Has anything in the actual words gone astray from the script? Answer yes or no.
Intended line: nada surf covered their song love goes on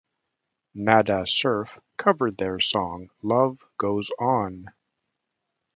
no